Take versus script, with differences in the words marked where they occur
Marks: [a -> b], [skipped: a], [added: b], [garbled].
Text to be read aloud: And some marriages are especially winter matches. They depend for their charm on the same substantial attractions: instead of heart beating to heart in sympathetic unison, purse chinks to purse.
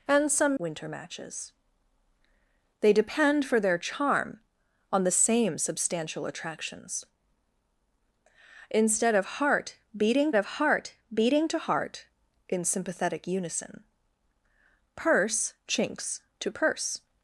And some [skipped: marriages are especially] winter matches. They depend for their charm on the same substantial attractions: instead of heart beating [added: of heart beating] to heart in sympathetic unison, purse chinks to purse.